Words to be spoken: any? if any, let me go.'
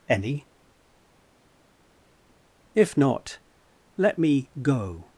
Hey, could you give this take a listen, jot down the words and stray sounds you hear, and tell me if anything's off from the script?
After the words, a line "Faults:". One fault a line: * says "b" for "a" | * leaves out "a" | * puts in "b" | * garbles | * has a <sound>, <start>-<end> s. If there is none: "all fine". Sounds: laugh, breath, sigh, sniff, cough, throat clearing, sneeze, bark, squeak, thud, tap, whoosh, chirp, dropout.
any? if not, let me go.'
Faults:
* says "not" for "any"